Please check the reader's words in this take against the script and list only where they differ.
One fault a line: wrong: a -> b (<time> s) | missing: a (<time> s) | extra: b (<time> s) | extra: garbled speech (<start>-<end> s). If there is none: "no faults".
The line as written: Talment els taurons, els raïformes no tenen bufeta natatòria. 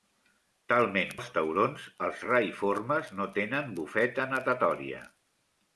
no faults